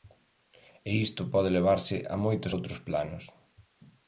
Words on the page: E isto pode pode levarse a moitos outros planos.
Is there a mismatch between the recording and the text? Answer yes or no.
yes